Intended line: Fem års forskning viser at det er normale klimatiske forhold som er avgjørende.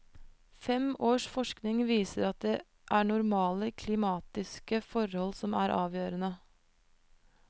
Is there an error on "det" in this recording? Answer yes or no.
no